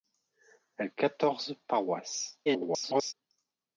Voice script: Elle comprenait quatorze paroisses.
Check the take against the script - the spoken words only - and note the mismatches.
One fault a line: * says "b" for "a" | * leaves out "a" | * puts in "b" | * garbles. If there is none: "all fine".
* leaves out "comprenait"
* garbles